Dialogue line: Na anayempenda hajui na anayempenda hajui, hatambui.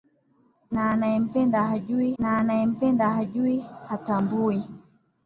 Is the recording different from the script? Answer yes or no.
no